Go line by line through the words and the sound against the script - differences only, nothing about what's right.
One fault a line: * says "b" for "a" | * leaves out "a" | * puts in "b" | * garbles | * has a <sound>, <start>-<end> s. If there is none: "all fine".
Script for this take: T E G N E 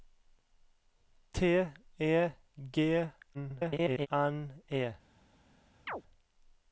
* garbles
* has a chirp, 5.9-6.0 s